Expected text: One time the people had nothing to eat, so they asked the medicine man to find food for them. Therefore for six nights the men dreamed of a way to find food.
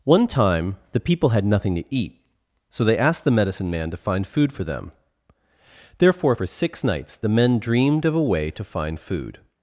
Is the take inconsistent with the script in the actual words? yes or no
no